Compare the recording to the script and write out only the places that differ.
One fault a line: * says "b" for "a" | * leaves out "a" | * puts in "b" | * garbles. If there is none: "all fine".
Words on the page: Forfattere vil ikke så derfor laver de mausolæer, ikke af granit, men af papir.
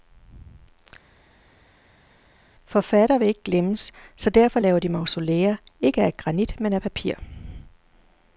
* puts in "glemmes"